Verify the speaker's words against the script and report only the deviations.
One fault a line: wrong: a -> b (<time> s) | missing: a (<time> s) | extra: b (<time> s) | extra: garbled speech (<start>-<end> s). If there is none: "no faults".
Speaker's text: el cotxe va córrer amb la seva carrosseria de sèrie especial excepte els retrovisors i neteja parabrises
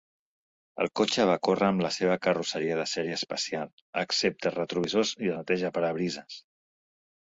no faults